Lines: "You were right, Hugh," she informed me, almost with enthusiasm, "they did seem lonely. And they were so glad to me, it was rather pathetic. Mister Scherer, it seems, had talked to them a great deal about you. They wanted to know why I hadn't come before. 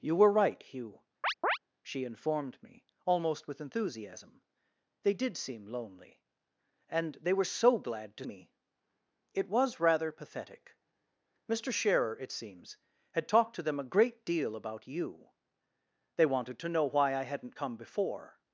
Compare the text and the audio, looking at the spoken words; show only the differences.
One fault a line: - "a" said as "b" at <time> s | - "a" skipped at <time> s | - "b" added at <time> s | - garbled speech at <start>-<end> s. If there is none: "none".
none